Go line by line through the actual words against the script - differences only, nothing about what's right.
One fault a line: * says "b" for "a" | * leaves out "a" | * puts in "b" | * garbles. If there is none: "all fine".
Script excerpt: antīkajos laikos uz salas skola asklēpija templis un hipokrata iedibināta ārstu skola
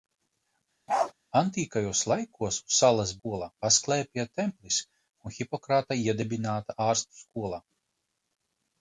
all fine